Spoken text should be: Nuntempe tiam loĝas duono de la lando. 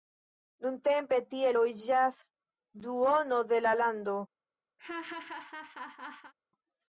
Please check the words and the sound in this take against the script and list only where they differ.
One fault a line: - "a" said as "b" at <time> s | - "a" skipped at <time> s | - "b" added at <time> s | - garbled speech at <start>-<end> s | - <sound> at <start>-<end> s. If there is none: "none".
- "tiam" said as "tie" at 1.3 s
- laugh at 4.8-6.3 s